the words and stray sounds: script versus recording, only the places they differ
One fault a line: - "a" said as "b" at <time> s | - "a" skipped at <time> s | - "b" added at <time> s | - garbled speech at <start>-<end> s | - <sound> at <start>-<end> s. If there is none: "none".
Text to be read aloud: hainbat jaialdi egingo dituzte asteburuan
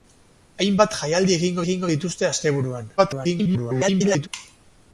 - "egingo" added at 1.6 s
- garbled speech at 3.0-4.3 s